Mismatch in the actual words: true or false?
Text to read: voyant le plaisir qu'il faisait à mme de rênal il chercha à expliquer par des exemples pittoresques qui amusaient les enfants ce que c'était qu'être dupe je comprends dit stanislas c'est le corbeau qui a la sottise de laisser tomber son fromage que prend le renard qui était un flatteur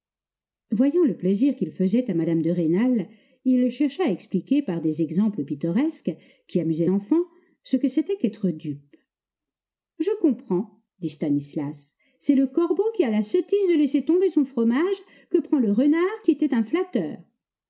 true